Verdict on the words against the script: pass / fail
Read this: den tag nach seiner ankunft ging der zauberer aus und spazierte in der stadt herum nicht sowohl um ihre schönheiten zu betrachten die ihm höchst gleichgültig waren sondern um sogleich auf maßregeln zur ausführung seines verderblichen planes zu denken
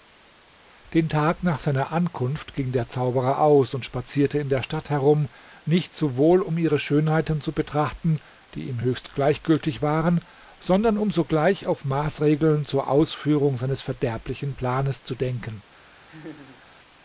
pass